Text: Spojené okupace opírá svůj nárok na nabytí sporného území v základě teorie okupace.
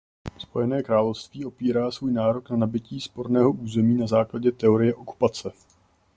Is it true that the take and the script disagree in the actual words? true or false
true